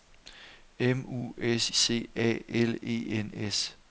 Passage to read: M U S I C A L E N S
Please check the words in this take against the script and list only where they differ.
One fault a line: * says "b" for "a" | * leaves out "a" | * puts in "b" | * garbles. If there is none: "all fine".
* leaves out "I"